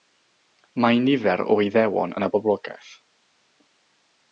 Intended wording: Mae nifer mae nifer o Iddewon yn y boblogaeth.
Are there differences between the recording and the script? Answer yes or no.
yes